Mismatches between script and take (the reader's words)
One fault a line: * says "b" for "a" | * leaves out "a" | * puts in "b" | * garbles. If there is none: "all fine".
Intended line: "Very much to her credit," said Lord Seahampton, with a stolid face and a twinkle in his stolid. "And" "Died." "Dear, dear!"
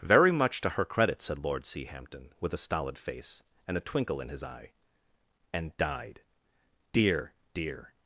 * says "eye" for "stolid"